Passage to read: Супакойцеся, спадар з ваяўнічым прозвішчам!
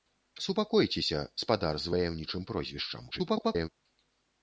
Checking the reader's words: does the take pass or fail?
fail